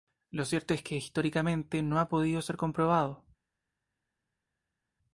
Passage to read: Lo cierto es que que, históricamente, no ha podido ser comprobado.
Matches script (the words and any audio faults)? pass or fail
fail